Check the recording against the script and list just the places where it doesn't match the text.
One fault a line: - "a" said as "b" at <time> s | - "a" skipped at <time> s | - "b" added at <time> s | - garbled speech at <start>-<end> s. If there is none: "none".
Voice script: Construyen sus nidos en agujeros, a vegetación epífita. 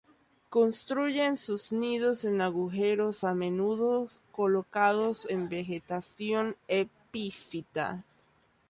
- "menudo colocados en" added at 3.3 s